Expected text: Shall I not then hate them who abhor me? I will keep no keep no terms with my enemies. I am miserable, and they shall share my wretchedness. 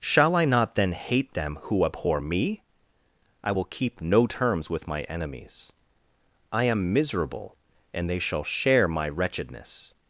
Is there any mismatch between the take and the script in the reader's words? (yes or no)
yes